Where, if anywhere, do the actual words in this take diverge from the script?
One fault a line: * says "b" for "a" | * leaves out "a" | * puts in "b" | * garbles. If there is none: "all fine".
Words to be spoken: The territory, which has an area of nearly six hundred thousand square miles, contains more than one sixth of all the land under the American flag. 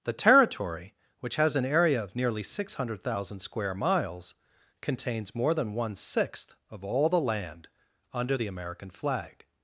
all fine